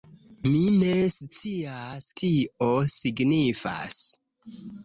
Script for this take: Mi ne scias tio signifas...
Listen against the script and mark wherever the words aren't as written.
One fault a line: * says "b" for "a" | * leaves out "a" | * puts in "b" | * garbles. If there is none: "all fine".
all fine